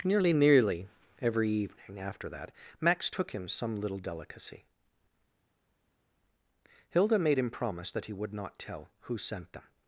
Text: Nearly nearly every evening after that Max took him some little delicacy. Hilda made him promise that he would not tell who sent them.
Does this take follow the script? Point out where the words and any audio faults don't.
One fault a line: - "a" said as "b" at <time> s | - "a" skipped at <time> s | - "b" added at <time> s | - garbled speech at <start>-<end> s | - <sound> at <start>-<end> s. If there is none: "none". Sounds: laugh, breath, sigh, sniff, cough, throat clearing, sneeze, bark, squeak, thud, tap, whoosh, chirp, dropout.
none